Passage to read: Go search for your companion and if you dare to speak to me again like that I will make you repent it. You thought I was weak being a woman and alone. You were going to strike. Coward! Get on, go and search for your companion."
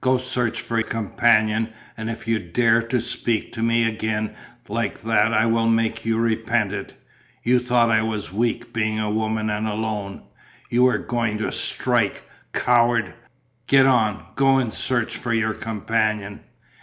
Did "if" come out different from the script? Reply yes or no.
no